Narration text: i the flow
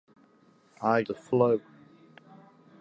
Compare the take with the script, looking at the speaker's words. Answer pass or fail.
pass